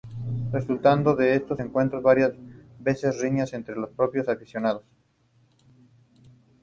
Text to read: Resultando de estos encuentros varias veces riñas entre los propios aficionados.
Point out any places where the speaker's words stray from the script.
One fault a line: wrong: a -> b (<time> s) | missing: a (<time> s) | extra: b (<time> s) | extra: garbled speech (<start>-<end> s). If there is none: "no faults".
no faults